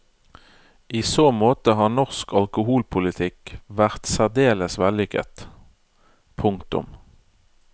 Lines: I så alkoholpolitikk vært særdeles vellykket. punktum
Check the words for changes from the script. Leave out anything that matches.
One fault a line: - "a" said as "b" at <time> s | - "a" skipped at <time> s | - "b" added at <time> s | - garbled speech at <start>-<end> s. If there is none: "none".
- "måte har norsk" added at 1.3 s